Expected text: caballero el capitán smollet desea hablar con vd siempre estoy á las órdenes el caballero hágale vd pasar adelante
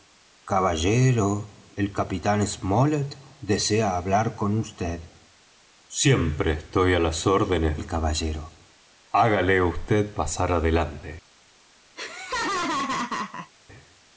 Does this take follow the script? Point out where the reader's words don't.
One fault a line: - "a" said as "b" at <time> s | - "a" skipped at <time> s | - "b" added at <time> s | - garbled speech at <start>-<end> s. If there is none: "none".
none